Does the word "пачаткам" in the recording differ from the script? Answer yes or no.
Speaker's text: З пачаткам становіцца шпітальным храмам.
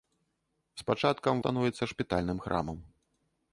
no